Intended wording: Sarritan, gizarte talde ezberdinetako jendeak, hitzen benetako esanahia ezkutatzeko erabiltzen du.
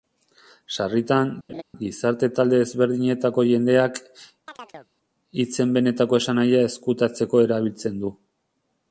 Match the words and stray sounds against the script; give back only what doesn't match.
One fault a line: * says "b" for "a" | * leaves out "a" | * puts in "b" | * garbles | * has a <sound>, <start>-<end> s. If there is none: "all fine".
* has a laugh, 1.5-1.6 s
* has a chirp, 4.5-4.9 s